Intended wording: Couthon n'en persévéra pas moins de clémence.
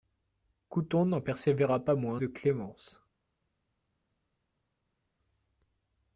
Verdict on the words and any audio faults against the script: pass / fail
pass